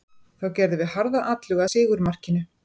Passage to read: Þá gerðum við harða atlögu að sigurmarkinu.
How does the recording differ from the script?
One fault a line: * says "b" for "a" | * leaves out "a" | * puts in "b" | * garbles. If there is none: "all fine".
all fine